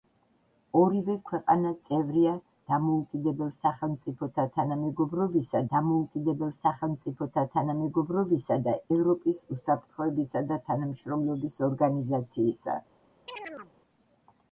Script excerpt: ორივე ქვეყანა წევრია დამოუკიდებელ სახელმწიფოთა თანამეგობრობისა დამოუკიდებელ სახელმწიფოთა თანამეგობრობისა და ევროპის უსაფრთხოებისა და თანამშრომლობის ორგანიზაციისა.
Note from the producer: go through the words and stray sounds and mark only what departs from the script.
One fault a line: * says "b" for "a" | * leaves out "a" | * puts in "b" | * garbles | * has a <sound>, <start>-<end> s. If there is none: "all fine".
* has a chirp, 13.3-13.7 s